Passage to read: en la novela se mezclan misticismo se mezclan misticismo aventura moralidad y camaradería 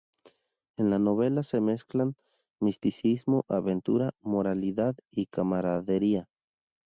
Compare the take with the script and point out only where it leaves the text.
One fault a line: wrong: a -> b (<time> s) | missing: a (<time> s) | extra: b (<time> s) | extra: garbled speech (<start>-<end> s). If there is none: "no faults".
missing: se mezclan misticismo (3.4 s)